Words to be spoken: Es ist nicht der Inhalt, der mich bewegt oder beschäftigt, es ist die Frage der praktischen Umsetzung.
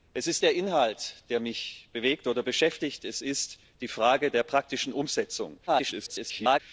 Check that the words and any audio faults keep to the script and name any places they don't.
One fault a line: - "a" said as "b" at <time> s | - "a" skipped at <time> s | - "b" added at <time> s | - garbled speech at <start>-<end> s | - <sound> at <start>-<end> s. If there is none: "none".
- "nicht" skipped at 0.4 s
- garbled speech at 5.7-6.6 s